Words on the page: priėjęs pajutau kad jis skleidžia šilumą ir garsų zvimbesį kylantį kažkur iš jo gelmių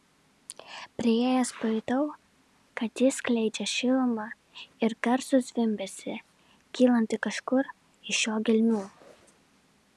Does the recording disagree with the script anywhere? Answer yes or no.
no